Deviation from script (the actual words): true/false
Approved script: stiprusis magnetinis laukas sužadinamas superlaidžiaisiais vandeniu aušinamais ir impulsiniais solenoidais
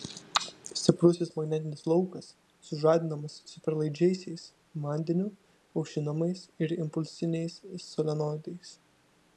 false